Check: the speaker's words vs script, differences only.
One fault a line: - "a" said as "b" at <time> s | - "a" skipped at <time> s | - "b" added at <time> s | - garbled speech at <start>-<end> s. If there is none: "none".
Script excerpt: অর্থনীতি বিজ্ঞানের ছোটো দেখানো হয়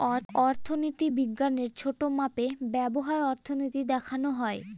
- "মাপে ব্যবহার অর্থনীতি" added at 2.2 s